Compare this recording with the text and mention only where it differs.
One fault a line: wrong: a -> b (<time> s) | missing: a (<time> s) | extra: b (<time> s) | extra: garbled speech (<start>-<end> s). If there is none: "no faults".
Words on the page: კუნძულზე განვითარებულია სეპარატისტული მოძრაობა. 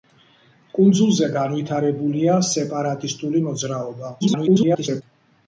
extra: garbled speech (4.2-5.0 s)